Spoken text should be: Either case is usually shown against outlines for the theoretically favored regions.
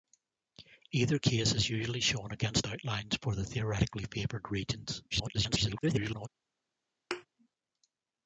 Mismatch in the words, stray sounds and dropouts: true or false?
true